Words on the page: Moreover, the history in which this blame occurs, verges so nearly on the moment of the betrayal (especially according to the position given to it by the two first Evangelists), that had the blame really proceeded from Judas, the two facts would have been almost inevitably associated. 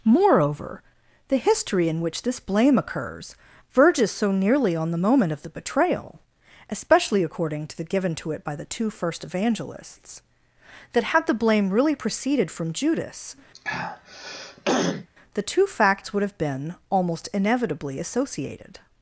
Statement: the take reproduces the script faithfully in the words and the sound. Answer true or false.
false